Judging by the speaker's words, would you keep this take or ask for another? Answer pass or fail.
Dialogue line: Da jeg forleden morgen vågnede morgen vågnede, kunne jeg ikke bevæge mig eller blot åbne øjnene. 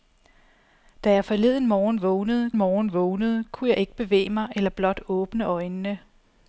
pass